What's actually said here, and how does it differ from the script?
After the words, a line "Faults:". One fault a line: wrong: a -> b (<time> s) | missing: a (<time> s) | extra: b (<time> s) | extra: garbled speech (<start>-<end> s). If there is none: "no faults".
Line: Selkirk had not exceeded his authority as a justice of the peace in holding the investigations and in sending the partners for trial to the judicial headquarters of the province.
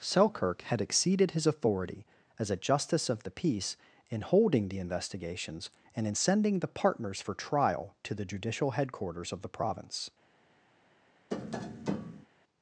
Selkirk had exceeded his authority as a justice of the peace in holding the investigations and in sending the partners for trial to the judicial headquarters of the province.
Faults:
missing: not (0.8 s)